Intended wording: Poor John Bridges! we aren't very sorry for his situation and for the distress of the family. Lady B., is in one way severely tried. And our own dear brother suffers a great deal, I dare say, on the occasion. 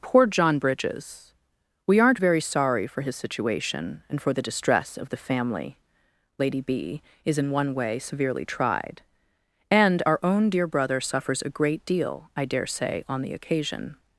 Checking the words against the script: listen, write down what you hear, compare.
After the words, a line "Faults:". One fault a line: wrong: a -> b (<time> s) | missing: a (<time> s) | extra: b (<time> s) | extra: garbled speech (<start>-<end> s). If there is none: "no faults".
Poor John Bridges! we aren't very sorry for his situation and for the distress of the family. Lady B., is in one way severely tried. And our own dear brother suffers a great deal, I dare say, on the occasion.
Faults:
no faults